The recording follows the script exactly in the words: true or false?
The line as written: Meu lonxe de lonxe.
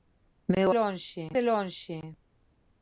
true